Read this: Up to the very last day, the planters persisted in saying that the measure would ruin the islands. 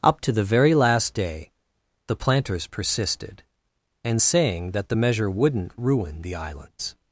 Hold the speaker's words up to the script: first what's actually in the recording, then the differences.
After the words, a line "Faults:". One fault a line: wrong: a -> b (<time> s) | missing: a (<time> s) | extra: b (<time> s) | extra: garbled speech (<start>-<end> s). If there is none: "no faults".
Up to the very last day, the planters persisted and saying that the measure wouldn't ruin the islands.
Faults:
wrong: in -> and (4.0 s)
wrong: would -> wouldn't (5.3 s)